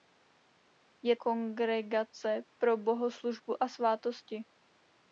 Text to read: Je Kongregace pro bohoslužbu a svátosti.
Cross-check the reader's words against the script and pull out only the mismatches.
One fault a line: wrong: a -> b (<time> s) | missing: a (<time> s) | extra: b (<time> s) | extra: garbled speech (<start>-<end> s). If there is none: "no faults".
no faults